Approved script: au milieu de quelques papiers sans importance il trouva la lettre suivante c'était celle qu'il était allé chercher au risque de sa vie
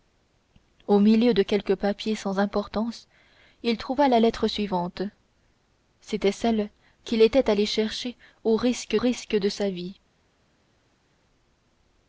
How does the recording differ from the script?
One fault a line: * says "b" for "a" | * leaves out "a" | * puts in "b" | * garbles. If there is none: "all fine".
* puts in "risque"